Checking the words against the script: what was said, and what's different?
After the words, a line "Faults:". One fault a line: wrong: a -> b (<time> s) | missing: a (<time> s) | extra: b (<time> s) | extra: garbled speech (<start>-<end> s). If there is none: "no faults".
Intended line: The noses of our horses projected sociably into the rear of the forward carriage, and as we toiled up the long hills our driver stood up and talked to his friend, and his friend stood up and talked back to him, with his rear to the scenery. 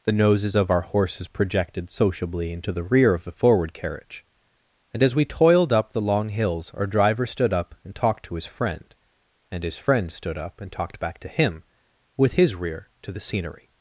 The noses of our horses projected sociably into the rear of the forward carriage, and as we toiled up the long hills our driver stood up and talked to his friend, and his friend stood up and talked back to him, with his rear to the scenery.
Faults:
no faults